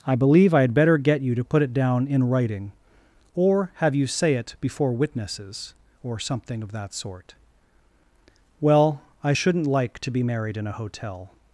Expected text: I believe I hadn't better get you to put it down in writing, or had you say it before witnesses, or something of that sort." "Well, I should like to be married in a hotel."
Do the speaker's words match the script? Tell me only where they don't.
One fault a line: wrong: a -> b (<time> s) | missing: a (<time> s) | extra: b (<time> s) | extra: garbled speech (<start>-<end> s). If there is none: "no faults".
wrong: hadn't -> had (0.6 s)
wrong: had -> have (3.8 s)
wrong: should -> shouldn't (9.3 s)